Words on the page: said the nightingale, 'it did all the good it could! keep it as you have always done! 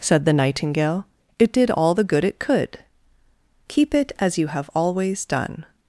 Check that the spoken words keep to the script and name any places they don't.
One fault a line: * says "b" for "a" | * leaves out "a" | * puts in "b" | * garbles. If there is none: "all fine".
all fine